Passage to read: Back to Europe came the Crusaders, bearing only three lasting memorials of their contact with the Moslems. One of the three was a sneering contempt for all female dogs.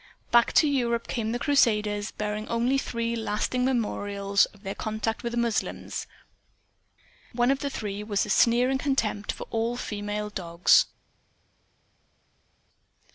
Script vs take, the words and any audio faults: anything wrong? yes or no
no